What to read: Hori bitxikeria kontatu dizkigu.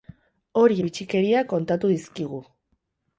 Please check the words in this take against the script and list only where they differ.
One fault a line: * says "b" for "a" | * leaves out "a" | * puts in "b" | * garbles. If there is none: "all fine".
all fine